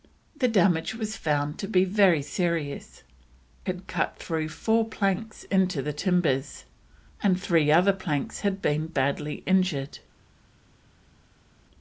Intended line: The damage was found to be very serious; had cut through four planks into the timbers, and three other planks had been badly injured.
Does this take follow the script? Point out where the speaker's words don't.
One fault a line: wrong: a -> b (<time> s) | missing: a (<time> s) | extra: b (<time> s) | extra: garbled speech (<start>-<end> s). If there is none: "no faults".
no faults